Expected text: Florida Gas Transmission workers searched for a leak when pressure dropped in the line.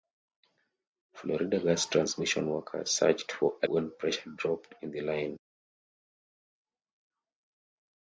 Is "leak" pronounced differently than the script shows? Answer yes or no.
yes